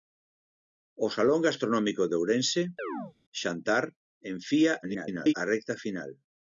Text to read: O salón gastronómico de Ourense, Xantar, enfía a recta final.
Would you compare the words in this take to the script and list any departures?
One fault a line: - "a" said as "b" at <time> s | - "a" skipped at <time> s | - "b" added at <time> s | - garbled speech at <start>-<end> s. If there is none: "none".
- garbled speech at 4.8-5.3 s